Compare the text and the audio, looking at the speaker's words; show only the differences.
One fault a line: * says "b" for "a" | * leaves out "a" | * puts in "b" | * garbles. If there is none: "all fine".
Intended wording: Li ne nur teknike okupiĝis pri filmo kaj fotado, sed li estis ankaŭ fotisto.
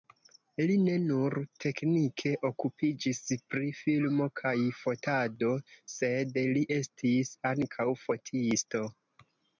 all fine